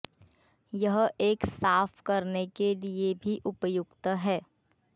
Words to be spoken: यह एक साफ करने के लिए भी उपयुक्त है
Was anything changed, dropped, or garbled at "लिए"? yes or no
no